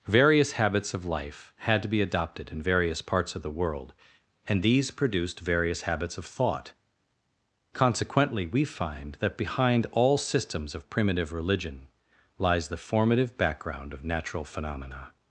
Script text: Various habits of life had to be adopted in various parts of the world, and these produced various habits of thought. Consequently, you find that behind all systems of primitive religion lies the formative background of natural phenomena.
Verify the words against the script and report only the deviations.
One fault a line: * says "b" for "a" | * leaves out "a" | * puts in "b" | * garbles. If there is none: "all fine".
* says "we" for "you"